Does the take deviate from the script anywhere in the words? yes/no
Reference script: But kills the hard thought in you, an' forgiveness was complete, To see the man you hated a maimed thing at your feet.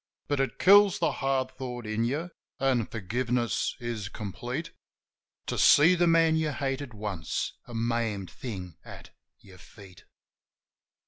yes